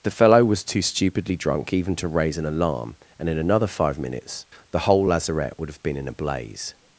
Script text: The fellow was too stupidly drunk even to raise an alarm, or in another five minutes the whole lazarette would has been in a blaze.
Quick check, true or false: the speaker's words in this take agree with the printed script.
false